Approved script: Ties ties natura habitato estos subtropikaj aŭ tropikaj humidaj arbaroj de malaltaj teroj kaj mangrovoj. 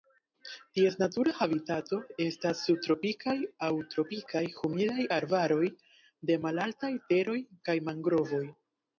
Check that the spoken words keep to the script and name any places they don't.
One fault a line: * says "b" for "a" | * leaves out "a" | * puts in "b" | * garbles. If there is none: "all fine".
* leaves out "ties"
* says "estas" for "estos"